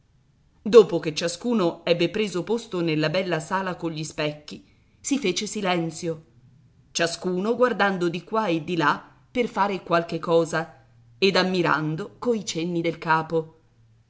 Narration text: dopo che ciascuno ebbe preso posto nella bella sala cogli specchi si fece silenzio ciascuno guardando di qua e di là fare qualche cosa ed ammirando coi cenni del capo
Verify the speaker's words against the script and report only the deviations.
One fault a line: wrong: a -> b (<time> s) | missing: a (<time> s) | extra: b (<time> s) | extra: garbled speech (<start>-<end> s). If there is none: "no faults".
extra: per (9.3 s)